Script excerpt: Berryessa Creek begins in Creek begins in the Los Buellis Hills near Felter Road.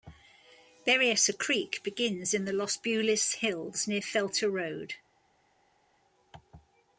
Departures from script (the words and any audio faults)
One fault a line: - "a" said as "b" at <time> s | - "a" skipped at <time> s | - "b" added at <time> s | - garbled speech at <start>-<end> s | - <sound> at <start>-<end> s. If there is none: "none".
- "Creek begins in" skipped at 2.5 s